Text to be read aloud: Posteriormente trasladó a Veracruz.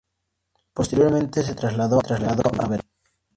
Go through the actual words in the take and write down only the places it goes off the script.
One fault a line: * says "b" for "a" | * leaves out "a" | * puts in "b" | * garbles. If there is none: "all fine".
* puts in "se"